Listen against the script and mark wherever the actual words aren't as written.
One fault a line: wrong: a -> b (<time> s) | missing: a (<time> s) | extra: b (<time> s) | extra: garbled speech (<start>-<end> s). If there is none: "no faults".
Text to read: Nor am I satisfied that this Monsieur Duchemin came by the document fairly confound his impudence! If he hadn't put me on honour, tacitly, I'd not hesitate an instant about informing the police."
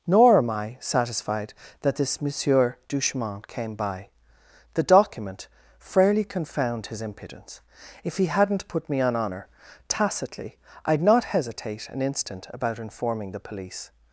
no faults